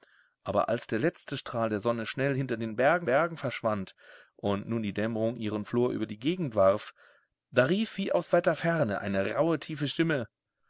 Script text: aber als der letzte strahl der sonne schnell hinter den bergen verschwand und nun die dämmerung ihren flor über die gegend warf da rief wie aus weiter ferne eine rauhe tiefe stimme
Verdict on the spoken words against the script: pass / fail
fail